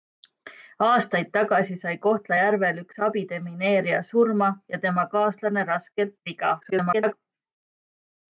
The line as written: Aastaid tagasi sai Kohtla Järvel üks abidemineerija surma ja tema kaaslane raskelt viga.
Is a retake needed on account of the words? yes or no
yes